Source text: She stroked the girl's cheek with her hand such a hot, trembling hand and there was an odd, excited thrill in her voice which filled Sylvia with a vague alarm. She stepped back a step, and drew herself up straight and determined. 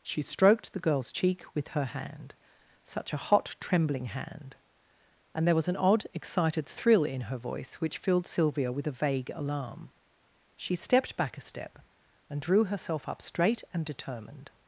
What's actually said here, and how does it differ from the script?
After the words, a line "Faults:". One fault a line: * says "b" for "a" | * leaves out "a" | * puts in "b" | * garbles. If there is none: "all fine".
She stroked the girl's cheek with her hand such a hot, trembling hand and there was an odd, excited thrill in her voice which filled Sylvia with a vague alarm. She stepped back a step, and drew herself up straight and determined.
Faults:
all fine